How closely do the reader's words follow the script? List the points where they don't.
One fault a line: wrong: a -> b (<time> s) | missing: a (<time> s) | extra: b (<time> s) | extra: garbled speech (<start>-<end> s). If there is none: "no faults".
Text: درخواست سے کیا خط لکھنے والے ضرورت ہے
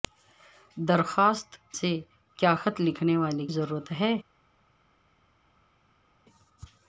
no faults